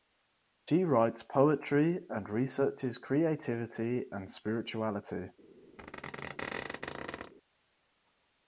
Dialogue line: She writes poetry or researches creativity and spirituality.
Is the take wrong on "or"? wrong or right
wrong